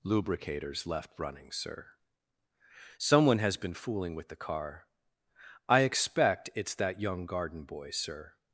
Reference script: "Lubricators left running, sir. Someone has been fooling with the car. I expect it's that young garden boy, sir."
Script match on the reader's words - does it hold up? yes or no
yes